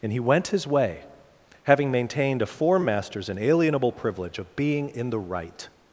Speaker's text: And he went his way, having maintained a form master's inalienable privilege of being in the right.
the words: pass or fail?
pass